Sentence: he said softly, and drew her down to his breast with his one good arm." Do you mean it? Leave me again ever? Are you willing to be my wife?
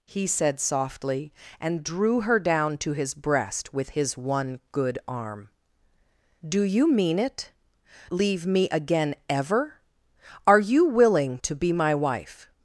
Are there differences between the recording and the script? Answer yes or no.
no